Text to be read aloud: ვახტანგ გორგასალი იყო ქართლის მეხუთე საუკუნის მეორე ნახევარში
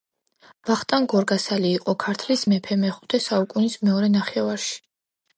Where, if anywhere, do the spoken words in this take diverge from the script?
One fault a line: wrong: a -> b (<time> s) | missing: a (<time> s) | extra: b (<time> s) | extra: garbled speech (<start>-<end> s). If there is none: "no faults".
extra: მეფე (2.5 s)